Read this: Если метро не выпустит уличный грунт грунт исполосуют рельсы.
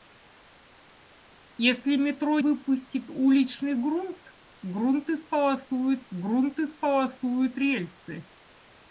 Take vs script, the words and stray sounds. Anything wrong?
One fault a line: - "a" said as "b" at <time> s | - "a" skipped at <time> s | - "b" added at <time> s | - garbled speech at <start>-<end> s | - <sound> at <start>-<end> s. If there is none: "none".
- "не" skipped at 2.4 s
- "грунт исполосуют" added at 6.1 s